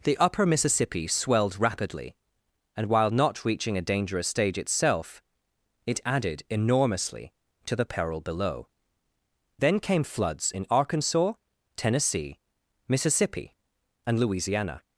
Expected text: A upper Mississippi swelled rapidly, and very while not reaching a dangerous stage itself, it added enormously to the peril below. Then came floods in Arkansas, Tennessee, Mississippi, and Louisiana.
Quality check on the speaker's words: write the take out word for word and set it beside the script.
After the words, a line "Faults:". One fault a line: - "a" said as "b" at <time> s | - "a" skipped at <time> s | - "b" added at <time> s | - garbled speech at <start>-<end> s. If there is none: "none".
The upper Mississippi swelled rapidly, and while not reaching a dangerous stage itself, it added enormously to the peril below. Then came floods in Arkansas, Tennessee, Mississippi, and Louisiana.
Faults:
- "A" said as "The" at 0.0 s
- "very" skipped at 2.9 s